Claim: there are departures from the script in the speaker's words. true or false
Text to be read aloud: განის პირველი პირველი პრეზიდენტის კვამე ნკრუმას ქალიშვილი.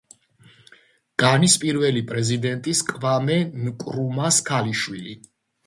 true